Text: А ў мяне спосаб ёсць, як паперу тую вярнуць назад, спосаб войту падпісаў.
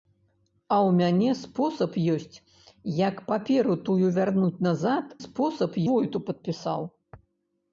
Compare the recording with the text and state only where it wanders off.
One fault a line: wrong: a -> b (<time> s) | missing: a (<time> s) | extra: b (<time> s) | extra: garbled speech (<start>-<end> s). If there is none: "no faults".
no faults